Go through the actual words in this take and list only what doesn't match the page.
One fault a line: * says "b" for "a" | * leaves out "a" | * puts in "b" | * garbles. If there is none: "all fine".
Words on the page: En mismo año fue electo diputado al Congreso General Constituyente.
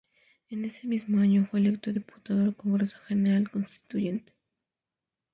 * puts in "ese"